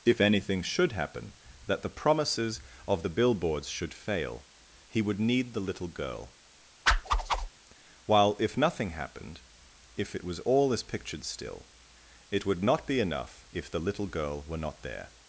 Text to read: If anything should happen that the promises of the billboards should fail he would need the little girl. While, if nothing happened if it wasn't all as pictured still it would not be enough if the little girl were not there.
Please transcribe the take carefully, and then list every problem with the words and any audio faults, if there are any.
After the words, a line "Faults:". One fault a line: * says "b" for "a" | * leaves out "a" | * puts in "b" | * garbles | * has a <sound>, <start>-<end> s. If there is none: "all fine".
If anything should happen that the promises of the billboards should fail he would need the little girl. While, if nothing happened if it was all as pictured still it would not be enough if the little girl were not there.
Faults:
* has a whoosh, 6.9-7.5 s
* says "was" for "wasn't"